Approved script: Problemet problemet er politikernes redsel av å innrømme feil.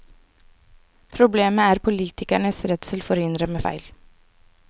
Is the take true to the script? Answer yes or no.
no